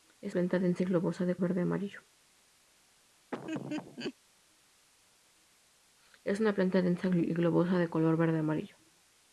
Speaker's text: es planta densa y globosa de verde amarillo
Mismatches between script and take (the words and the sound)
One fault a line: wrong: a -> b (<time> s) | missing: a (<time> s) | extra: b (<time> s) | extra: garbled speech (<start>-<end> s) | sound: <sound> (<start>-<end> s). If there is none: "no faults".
sound: laugh (3.3-4.2 s)